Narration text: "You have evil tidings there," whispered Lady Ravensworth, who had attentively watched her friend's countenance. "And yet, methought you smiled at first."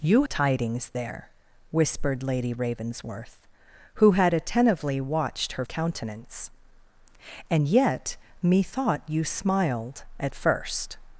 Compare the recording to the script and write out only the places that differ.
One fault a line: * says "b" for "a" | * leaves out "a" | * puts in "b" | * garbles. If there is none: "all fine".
* leaves out "have evil"
* leaves out "friend's"